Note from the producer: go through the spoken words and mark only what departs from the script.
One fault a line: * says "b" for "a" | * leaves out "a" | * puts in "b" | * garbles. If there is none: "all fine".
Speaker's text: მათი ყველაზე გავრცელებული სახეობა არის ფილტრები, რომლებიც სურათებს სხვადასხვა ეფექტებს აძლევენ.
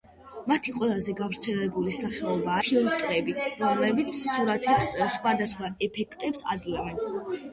* leaves out "არის"